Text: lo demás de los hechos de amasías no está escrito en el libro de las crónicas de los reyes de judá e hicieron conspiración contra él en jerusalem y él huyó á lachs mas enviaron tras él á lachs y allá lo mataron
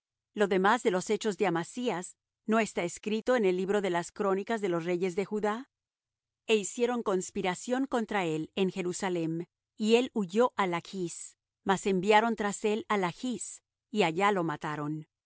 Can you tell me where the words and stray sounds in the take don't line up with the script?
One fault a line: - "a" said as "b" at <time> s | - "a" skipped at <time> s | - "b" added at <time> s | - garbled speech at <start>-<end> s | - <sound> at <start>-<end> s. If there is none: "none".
none